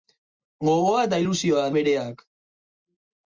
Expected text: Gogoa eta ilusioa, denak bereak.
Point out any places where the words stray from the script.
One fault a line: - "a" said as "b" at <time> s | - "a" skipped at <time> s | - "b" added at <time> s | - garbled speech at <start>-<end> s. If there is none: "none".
- "denak" skipped at 1.7 s